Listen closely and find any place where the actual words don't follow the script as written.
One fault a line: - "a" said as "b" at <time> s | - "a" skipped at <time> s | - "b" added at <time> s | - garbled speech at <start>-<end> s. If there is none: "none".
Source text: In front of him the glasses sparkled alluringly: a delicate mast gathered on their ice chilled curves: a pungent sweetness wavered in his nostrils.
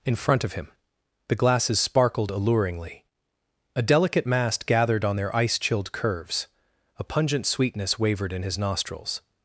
none